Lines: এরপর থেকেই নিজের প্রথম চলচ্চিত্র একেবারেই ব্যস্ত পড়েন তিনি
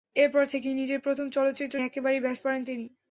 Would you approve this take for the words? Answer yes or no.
yes